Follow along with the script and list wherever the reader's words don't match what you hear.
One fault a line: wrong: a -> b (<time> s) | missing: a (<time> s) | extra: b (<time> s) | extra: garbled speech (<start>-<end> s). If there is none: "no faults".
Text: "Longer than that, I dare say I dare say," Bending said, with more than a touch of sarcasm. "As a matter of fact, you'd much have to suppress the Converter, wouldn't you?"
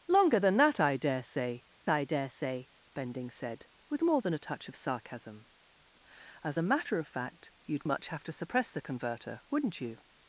no faults